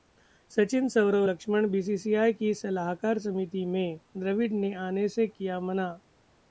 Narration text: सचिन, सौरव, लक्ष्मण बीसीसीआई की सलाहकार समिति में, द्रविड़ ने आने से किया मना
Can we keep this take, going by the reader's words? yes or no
yes